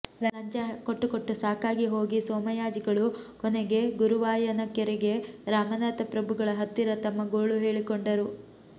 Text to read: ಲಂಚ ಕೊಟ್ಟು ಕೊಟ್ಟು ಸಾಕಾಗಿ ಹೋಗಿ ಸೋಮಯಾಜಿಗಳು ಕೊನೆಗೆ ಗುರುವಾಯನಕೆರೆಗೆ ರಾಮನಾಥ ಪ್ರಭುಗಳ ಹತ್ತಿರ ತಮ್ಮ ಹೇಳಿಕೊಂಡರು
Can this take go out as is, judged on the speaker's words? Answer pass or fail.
fail